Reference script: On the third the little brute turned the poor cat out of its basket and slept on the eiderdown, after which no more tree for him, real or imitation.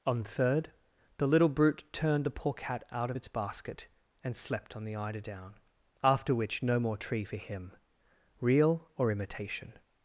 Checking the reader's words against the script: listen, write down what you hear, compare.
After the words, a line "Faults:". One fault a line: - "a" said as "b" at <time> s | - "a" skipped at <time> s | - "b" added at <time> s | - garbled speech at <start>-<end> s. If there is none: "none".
On third the little brute turned the poor cat out of its basket and slept on the eiderdown, after which no more tree for him, real or imitation.
Faults:
- "the" skipped at 0.2 s